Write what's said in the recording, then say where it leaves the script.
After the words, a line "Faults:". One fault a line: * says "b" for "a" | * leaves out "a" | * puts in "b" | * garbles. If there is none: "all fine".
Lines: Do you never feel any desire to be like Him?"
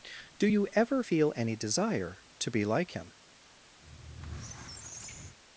Do you ever feel any desire to be like Him?"
Faults:
* says "ever" for "never"